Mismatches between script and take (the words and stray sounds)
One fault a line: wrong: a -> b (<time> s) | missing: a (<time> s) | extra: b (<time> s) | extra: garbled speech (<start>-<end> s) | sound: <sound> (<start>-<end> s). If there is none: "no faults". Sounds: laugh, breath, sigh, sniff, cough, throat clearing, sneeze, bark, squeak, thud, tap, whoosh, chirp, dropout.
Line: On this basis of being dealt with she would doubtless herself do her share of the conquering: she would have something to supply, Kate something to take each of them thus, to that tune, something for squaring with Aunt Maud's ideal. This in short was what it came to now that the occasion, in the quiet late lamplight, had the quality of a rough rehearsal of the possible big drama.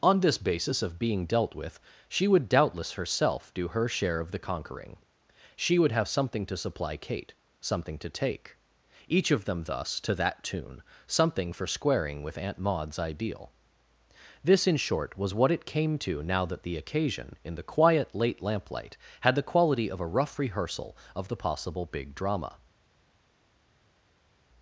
no faults